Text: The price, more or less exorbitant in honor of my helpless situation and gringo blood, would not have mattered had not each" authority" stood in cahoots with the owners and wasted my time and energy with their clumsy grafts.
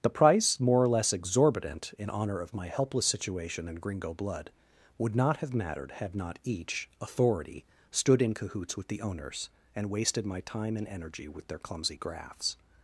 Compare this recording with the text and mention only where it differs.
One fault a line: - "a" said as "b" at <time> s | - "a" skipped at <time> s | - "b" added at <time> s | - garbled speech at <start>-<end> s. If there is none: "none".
none